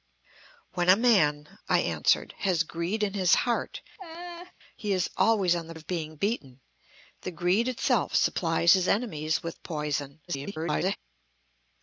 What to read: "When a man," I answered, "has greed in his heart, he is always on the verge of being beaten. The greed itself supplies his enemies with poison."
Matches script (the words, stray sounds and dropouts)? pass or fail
fail